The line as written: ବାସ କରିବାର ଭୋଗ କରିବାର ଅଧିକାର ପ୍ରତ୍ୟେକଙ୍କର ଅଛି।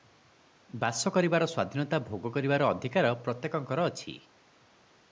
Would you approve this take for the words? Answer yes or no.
no